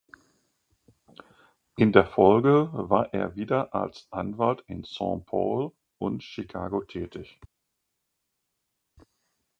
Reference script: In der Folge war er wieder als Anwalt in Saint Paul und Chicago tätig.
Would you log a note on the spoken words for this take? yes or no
no